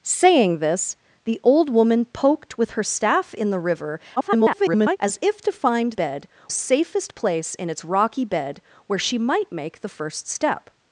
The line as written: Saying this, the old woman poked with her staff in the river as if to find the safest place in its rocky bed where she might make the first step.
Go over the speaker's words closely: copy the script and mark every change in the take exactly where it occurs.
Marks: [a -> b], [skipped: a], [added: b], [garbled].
Saying this, the old woman poked with her staff in the river [garbled] as if to find [the -> bed] safest place in its rocky bed where she might make the first step.